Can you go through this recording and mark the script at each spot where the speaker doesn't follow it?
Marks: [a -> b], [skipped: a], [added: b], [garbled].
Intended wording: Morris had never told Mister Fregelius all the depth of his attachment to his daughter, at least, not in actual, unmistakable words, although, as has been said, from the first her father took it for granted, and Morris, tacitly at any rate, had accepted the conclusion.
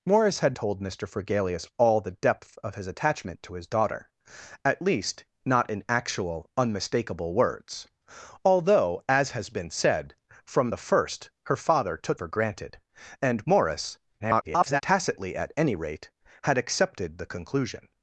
Morris had [skipped: never] told Mister Fregelius all the depth of his attachment to his daughter, at least, not in actual, unmistakable words, although, as has been said, from the first her father took [skipped: it] for granted, and Morris, [garbled] tacitly at any rate, had accepted the conclusion.